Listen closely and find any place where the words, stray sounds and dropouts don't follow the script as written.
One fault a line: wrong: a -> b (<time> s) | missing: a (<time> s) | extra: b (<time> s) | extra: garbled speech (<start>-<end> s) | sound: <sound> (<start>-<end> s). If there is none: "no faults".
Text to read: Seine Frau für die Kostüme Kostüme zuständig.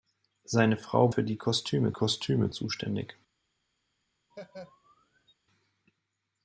sound: laugh (4.3-5.3 s)